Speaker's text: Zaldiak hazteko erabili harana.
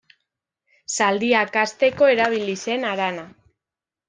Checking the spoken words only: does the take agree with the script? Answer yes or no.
no